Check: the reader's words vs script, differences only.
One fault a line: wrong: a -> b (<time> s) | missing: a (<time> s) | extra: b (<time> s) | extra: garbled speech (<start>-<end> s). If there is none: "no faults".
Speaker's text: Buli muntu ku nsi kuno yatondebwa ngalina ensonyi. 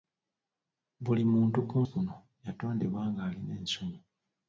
missing: nsi (1.8 s)